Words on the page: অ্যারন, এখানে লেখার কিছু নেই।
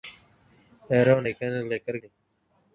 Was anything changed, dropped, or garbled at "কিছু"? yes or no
yes